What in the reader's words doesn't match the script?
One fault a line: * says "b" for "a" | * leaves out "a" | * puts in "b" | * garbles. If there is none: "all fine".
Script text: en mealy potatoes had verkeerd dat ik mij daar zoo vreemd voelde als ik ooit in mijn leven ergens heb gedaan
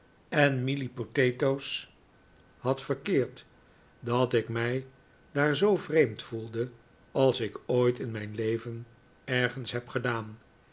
all fine